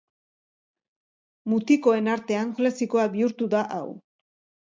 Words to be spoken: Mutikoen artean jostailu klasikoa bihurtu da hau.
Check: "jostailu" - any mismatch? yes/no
yes